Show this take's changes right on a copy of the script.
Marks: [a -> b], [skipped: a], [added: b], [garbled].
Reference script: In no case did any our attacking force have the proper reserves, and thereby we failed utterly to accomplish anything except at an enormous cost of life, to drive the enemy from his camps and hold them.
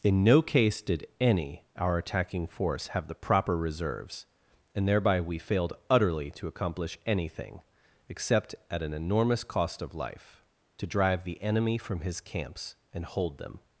In no case did any our attacking force have the proper reserves, and thereby we failed utterly to accomplish anything except at an enormous cost of life, to drive the enemy from his camps and hold them.